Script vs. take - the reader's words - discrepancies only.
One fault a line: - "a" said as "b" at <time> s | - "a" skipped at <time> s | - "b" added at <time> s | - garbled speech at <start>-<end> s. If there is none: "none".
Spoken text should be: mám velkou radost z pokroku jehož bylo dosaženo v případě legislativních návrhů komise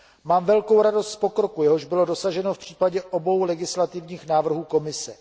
- "obou" added at 3.0 s